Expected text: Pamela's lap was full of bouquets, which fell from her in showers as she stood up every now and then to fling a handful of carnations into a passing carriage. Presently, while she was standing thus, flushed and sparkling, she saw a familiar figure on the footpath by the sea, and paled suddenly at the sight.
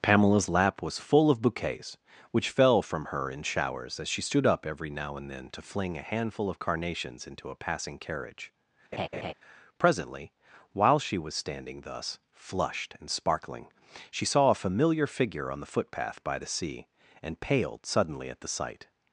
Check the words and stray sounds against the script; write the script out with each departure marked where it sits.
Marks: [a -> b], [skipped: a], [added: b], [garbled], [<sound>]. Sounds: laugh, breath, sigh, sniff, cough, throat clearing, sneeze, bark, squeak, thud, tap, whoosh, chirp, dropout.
Pamela's lap was full of bouquets, which fell from her in showers as she stood up every now and then to fling a handful of carnations into a passing carriage. [laugh] Presently, while she was standing thus, flushed and sparkling, she saw a familiar figure on the footpath by the sea, and paled suddenly at the sight.